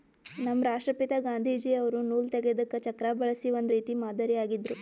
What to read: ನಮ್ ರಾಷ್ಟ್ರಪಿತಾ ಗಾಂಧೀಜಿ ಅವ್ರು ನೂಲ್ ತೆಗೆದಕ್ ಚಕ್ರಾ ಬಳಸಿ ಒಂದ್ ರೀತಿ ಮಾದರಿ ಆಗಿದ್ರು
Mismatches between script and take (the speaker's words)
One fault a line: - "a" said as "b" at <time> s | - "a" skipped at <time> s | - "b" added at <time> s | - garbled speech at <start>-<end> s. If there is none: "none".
none